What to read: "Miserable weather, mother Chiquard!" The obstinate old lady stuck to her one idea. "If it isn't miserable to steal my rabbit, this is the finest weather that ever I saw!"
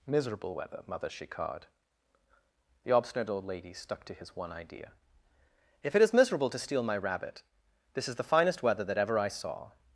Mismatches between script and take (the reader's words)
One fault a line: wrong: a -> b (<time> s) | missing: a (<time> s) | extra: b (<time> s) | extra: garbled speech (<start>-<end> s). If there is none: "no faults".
wrong: her -> his (4.1 s)
wrong: isn't -> is (6.0 s)